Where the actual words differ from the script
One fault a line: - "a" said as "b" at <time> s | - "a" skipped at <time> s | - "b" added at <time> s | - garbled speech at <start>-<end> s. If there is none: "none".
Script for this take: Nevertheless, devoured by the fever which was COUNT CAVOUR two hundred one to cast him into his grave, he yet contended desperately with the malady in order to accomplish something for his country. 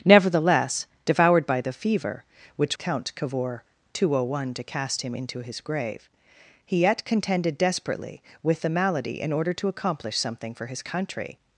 - "was" skipped at 2.8 s